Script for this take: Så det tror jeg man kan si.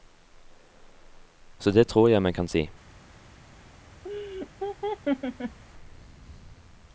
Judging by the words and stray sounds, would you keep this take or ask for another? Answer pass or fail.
fail